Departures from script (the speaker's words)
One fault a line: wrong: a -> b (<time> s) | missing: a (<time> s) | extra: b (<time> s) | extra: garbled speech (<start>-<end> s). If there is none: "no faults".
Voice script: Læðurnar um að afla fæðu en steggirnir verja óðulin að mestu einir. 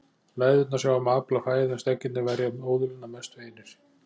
extra: sjá (0.8 s)